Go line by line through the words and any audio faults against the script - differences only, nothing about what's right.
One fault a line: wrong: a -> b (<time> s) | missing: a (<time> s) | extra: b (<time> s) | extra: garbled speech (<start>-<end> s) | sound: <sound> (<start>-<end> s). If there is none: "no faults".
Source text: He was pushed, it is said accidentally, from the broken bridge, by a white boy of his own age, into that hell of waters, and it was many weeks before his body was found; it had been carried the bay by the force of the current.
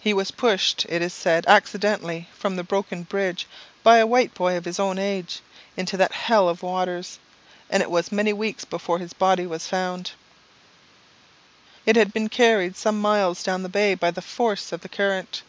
extra: some miles down (12.8 s)